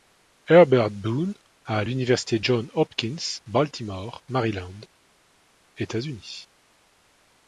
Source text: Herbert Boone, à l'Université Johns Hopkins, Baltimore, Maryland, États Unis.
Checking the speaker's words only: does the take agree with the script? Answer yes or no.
yes